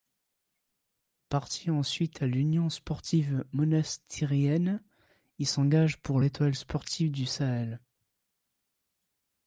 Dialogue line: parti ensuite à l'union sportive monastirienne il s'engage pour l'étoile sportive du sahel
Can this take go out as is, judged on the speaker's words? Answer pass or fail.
pass